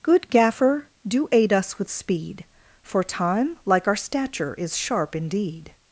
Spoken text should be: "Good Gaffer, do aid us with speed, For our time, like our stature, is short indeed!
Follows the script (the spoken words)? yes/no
no